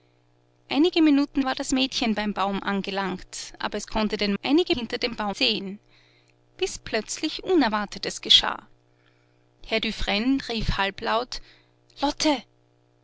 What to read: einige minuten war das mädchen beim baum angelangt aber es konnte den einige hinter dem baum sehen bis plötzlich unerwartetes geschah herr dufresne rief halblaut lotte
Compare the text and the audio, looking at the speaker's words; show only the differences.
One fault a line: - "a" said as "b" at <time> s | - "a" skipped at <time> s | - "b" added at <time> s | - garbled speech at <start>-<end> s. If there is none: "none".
none